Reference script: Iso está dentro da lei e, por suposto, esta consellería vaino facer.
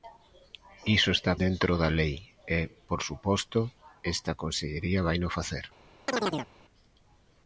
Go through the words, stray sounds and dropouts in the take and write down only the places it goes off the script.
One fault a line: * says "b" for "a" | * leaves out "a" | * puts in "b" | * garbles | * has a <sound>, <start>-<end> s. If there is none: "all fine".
* has a chirp, 6.1-6.5 s